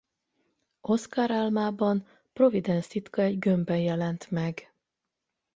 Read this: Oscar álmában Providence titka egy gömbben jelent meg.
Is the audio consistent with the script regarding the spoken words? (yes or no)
yes